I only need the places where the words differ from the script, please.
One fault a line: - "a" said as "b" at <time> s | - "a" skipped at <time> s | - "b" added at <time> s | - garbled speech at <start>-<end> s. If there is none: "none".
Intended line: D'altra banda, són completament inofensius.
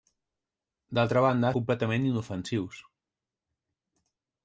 - "són" skipped at 1.5 s